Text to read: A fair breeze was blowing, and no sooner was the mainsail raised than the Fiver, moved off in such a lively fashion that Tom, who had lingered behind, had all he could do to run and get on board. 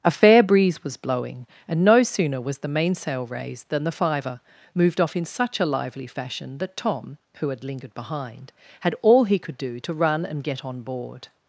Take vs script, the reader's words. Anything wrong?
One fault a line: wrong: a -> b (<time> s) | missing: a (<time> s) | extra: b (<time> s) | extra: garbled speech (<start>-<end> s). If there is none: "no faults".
no faults